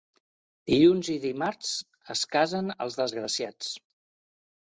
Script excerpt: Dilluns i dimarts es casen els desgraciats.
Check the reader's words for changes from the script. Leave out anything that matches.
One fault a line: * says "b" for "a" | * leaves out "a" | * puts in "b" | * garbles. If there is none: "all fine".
all fine